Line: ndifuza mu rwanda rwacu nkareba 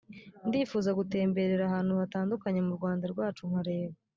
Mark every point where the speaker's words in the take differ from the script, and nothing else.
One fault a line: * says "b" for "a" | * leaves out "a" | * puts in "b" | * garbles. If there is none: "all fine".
* puts in "gutemberera ahantu hatandukanye"